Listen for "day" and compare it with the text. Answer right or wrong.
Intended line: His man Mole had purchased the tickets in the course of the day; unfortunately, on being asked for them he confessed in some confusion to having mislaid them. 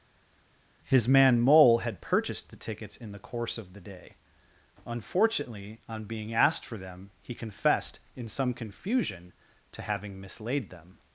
right